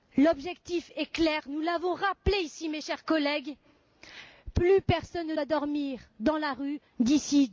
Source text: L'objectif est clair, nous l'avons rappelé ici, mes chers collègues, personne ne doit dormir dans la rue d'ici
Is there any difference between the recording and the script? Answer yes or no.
yes